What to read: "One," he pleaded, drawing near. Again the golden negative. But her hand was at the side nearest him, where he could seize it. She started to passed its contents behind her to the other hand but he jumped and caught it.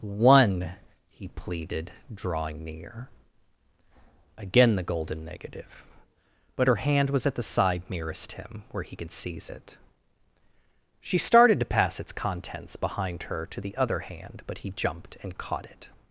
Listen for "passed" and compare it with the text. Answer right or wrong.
wrong